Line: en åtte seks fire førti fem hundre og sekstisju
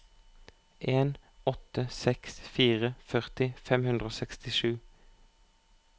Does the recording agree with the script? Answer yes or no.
yes